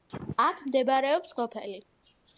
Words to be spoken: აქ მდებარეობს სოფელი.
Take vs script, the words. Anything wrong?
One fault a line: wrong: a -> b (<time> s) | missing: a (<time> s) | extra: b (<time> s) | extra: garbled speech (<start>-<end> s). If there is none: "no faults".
no faults